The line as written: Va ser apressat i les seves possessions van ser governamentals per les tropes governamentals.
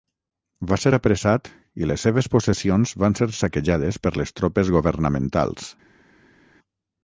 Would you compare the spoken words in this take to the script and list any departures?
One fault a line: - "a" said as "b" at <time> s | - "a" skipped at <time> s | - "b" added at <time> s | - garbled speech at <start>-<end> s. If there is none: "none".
- "governamentals" said as "saquejades" at 3.4 s